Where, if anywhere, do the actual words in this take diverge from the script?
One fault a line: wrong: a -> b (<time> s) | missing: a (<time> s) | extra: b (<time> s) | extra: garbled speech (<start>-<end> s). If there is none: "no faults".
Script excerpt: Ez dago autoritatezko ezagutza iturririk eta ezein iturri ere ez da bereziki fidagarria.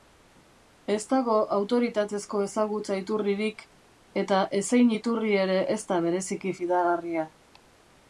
no faults